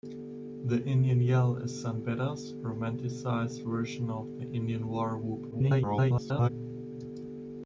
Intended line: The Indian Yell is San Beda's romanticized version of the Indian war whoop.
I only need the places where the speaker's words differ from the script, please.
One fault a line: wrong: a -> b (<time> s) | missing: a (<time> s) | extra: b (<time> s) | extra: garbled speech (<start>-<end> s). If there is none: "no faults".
extra: garbled speech (5.5-6.5 s)